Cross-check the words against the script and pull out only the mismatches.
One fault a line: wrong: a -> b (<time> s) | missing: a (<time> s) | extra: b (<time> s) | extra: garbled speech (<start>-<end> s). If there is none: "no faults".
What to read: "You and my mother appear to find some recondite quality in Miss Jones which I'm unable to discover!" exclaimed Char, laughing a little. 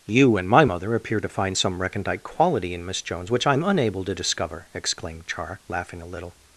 no faults